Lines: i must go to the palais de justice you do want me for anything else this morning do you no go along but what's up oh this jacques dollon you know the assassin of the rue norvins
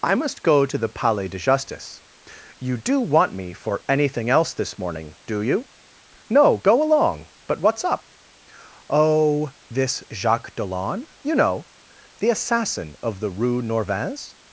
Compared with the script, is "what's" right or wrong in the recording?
right